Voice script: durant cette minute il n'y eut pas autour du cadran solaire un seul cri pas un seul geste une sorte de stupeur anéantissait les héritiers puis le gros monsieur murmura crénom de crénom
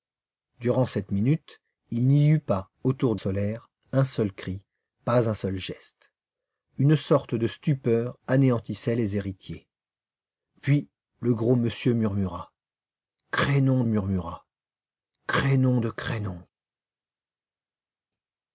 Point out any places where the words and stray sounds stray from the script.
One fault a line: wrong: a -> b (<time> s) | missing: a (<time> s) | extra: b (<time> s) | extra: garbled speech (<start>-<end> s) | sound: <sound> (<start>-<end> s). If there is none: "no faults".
missing: du cadran (3.1 s)
extra: murmura crénom (13.8 s)